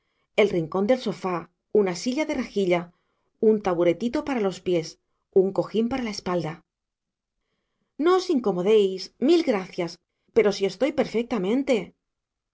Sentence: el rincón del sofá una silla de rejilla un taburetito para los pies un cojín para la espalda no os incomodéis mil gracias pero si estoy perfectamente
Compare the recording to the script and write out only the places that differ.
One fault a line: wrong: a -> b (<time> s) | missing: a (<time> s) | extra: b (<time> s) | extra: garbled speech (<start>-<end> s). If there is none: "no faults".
no faults